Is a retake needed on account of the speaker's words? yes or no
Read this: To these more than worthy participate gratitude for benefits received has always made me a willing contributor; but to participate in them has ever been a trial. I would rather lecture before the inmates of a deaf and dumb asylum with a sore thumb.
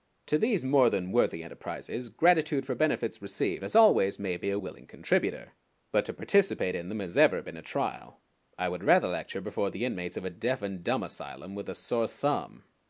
yes